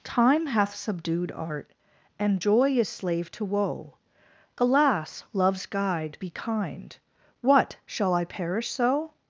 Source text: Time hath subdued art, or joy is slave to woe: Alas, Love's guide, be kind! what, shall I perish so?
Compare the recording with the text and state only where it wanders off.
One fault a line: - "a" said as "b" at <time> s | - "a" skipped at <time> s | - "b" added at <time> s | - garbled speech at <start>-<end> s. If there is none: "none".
- "or" said as "and" at 2.2 s